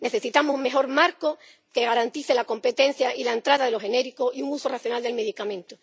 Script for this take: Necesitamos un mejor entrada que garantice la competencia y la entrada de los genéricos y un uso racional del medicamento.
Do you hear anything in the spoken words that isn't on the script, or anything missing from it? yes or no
yes